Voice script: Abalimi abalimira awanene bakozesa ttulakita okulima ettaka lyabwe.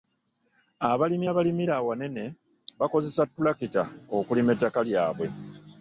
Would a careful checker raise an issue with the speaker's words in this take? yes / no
no